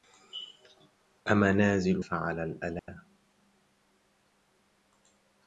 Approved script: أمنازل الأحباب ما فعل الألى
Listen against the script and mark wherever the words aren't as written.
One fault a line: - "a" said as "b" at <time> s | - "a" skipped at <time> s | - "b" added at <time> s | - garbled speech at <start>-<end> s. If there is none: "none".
- "الأحباب ما" skipped at 2.0 s